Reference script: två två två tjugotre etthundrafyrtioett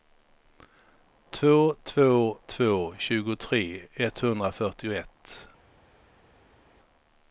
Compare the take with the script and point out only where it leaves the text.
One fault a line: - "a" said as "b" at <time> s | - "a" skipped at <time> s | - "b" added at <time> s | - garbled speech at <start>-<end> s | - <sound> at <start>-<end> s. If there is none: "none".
none